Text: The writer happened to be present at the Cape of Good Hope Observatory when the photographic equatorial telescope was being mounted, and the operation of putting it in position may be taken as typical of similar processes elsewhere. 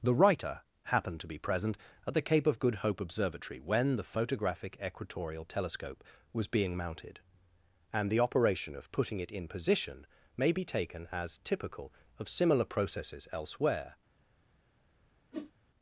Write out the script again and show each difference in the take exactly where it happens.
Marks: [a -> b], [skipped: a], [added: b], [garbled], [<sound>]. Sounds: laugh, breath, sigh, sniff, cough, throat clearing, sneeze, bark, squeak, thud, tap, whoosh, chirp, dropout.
The writer happened to be present at the Cape of Good Hope Observatory when the photographic equatorial telescope was being mounted, and the operation of putting it in position may be taken as typical of similar processes elsewhere. [whoosh]